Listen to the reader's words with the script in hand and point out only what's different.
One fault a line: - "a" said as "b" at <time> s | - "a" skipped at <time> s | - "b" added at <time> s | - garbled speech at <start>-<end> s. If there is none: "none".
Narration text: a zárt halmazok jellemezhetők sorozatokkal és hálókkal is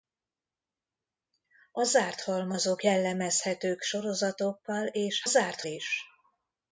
- "hálókkal" said as "zárt" at 5.2 s